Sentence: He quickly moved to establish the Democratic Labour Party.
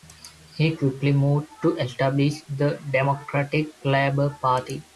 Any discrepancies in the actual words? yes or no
no